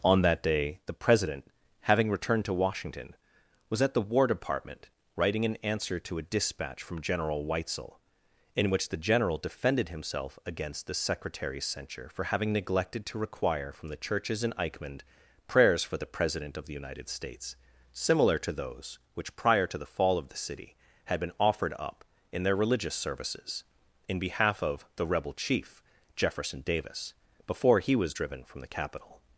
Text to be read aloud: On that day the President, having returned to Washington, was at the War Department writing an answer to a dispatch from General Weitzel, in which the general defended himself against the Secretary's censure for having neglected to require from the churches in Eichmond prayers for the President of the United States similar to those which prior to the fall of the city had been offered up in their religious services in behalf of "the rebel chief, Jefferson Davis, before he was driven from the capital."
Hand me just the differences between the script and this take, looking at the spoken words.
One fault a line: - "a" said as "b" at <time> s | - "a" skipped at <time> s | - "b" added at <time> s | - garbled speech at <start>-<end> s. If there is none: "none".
none